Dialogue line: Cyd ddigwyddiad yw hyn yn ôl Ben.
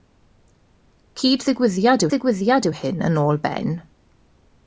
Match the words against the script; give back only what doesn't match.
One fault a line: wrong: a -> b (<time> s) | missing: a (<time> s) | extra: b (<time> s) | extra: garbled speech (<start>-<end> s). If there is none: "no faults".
extra: ddigwyddiad (2.1 s)